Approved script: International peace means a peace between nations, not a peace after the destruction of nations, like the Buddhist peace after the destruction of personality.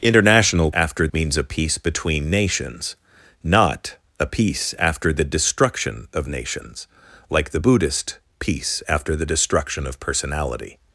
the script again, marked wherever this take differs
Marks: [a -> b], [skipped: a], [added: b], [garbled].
International [peace -> after] means a peace between nations, not a peace after the destruction of nations, like the Buddhist peace after the destruction of personality.